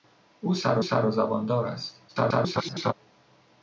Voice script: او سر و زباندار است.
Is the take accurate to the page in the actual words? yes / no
no